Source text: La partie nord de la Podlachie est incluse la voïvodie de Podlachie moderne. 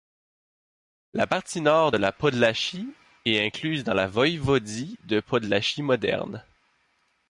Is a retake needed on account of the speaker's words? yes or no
yes